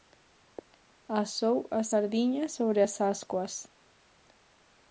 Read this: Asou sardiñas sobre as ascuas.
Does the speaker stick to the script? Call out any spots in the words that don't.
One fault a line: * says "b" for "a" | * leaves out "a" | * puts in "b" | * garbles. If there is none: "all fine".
* puts in "as"